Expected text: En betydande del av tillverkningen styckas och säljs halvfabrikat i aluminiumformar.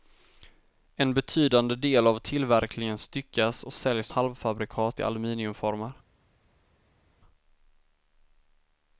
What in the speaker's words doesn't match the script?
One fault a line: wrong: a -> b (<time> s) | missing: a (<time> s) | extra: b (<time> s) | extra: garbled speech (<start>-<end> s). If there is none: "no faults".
no faults